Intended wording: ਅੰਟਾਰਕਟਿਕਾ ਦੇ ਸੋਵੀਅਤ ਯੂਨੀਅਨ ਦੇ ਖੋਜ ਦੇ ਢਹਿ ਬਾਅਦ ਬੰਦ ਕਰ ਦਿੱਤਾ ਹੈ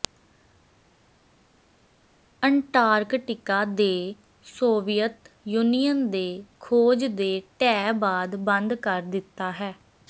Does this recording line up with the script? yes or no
yes